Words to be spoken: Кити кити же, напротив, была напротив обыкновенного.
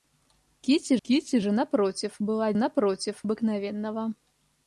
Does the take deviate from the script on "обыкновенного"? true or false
false